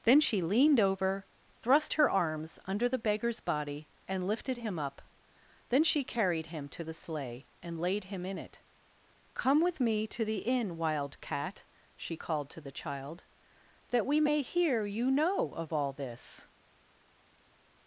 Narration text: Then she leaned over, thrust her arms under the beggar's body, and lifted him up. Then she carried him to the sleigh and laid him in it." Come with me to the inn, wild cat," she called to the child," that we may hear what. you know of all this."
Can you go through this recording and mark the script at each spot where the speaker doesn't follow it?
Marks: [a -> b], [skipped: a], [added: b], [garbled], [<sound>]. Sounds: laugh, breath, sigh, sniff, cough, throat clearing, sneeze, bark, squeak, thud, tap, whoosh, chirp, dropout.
Then she leaned over, thrust her arms under the beggar's body, and lifted him up. Then she carried him to the sleigh and laid him in it." Come with me to the inn, wild cat," she called to the child," that we may hear [skipped: what.] you know of all this."